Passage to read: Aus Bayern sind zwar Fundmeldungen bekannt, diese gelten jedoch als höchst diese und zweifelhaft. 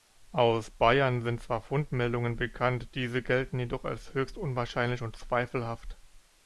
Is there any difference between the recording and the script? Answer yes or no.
yes